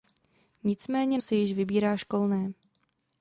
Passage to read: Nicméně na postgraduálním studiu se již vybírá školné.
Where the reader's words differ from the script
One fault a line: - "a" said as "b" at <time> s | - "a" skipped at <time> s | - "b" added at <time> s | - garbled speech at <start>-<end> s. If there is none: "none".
- "na postgraduálním studiu" skipped at 1.2 s